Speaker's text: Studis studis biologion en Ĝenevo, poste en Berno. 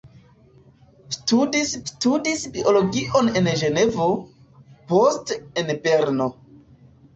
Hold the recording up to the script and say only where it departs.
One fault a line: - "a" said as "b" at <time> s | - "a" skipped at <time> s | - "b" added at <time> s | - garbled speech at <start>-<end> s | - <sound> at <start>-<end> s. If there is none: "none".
none